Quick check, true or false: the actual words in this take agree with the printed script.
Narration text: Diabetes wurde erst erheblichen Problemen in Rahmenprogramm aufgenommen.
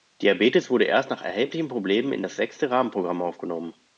false